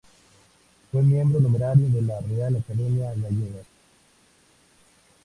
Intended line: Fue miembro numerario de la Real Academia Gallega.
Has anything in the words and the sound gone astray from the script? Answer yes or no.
no